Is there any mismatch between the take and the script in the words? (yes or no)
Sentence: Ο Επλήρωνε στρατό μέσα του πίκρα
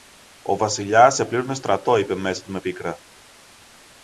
yes